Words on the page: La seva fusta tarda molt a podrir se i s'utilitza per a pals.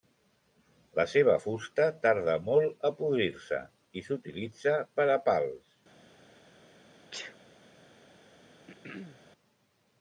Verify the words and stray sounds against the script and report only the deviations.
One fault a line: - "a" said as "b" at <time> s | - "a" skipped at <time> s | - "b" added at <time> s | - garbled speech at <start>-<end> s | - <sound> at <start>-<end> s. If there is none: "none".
- sneeze at 7.1-7.4 s
- throat clearing at 8.7-9.2 s